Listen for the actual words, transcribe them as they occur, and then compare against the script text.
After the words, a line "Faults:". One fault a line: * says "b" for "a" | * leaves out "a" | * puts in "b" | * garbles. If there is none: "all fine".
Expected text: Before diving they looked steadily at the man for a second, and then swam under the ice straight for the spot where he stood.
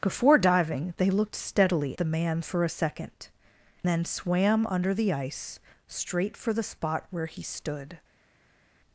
Before diving they looked steadily the man for a second, then swam under the ice straight for the spot where he stood.
Faults:
* leaves out "at"
* leaves out "and"